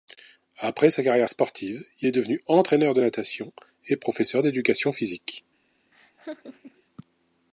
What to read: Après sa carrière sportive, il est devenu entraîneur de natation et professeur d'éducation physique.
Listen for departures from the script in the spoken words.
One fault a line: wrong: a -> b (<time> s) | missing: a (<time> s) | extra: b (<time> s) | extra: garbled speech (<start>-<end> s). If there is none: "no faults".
no faults